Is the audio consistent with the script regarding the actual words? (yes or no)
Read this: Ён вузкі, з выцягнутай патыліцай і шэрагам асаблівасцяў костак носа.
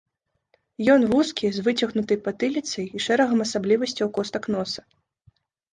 yes